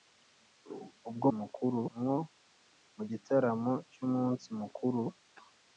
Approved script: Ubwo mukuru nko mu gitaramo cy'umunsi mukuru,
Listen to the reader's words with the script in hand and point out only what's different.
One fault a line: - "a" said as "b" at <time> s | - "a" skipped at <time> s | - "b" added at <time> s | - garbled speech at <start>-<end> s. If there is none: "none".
none